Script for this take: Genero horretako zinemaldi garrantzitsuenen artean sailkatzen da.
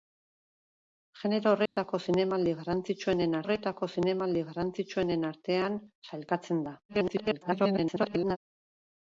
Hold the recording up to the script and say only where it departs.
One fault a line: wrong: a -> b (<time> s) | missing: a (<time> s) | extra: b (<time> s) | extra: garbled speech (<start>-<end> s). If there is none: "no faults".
extra: horretako zinemaldi garrantzitsuenen (3.5 s)
extra: garbled speech (6.9-8.4 s)